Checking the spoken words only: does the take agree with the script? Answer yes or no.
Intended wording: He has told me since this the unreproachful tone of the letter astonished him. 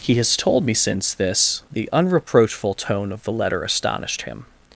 yes